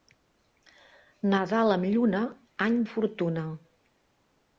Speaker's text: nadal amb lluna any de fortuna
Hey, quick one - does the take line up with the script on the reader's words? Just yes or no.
no